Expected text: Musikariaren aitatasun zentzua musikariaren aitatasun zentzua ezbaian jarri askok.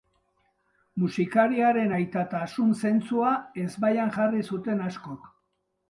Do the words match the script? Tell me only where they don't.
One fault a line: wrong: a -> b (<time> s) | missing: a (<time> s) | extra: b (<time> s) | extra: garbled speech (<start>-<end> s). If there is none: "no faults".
missing: musikariaren aitatasun zentzua (3.3 s)
extra: zuten (4.5 s)